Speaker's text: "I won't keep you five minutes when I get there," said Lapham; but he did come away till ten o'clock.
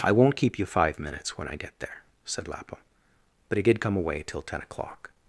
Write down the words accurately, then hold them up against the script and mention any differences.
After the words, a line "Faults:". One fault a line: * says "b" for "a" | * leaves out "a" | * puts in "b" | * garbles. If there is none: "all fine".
"I won't keep you five minutes when I get there," said Lapham; but he did come away till ten o'clock.
Faults:
all fine